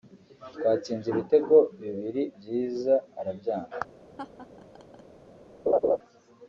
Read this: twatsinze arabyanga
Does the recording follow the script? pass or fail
fail